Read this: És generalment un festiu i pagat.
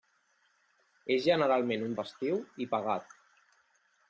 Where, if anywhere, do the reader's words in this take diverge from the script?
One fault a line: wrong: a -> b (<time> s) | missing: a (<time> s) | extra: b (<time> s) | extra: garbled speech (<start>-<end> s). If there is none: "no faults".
no faults